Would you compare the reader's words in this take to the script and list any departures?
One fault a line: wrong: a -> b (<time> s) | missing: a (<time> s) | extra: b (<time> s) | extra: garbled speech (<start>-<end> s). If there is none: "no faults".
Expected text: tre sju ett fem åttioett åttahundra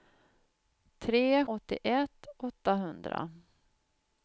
missing: sju ett fem (1.4 s)